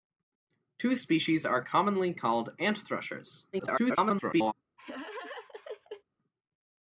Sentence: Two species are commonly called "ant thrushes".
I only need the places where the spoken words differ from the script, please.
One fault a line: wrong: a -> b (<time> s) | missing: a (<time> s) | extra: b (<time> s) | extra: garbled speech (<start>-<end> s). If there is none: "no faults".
extra: garbled speech (3.5-4.5 s)